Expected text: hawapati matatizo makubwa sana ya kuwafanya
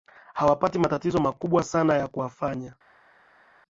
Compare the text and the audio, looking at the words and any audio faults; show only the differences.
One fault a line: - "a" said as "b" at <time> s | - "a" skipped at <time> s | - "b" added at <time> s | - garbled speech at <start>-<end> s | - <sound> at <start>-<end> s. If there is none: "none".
none